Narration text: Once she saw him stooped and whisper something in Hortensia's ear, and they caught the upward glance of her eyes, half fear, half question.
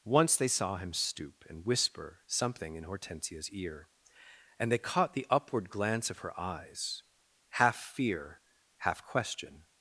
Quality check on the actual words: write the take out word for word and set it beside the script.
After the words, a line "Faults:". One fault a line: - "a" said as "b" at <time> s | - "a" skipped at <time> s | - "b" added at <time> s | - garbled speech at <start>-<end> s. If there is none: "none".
Once they saw him stoop and whisper something in Hortensia's ear, and they caught the upward glance of her eyes, half fear, half question.
Faults:
- "she" said as "they" at 0.3 s
- "stooped" said as "stoop" at 0.9 s